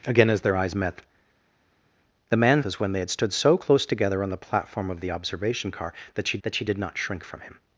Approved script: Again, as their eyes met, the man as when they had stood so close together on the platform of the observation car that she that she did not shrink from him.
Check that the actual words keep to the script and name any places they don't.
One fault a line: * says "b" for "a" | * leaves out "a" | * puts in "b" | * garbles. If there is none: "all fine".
all fine